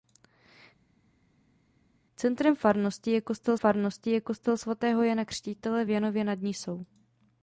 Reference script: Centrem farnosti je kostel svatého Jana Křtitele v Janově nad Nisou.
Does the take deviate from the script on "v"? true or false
false